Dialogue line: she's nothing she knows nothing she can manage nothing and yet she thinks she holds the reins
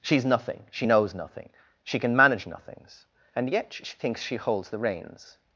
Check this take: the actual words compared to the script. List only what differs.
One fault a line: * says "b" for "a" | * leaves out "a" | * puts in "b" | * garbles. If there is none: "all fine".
* says "nothings" for "nothing"